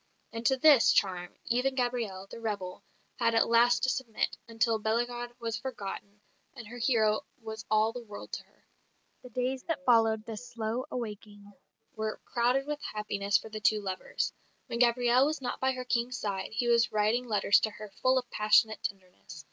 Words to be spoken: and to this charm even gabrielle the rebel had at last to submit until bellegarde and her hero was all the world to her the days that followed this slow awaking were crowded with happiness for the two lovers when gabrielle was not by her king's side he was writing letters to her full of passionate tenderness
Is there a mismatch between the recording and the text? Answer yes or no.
yes